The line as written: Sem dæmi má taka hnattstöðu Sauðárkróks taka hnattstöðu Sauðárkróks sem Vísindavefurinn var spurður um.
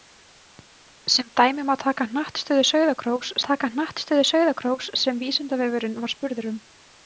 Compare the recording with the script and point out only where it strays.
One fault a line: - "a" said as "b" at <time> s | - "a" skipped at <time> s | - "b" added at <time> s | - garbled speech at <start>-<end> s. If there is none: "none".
none